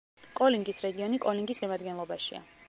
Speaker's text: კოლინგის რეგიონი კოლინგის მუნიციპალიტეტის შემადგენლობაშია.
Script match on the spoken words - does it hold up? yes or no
no